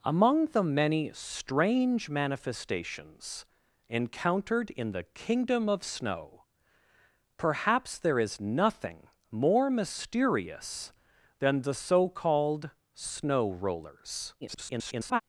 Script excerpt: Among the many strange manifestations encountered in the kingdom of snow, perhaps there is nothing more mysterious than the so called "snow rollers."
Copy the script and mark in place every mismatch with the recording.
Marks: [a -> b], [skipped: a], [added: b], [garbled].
Among the many strange manifestations encountered in the kingdom of snow, perhaps there is nothing more mysterious than the so called "snow rollers." [garbled]